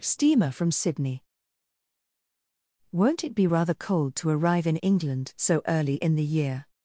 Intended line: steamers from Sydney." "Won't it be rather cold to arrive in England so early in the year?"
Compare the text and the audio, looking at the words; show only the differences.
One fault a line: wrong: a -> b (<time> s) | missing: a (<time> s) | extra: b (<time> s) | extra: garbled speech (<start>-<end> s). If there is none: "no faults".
wrong: steamers -> steamer (0.0 s)